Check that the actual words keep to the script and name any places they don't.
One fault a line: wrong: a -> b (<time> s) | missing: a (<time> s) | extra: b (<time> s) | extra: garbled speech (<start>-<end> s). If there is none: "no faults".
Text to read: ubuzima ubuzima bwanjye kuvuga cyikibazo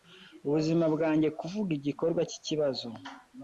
missing: ubuzima (0.8 s)
extra: igikorwa (1.8 s)